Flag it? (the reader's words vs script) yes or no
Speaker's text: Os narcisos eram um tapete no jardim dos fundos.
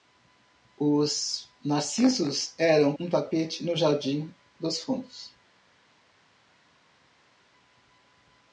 no